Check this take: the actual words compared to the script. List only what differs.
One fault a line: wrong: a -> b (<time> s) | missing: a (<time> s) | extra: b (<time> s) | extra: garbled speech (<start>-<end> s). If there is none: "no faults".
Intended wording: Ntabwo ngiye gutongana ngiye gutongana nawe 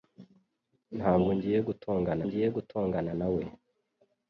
no faults